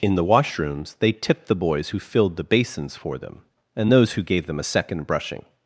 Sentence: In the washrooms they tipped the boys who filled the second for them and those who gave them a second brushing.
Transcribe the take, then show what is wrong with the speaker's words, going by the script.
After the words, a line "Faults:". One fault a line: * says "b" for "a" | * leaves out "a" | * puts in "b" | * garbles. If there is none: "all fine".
In the washrooms they tipped the boys who filled the basins for them and those who gave them a second brushing.
Faults:
* says "basins" for "second"